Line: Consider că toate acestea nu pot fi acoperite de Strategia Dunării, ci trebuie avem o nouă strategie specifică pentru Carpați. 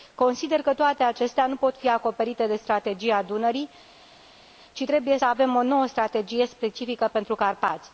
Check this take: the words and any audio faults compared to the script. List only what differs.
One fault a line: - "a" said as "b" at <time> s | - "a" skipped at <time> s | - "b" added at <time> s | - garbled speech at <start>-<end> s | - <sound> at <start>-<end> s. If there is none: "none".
none